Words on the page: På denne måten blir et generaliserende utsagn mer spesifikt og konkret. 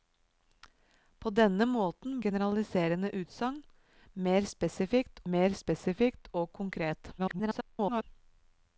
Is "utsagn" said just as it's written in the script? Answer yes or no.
no